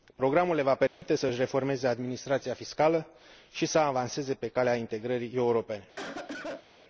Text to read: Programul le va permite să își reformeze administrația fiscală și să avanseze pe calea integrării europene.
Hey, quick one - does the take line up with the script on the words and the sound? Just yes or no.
no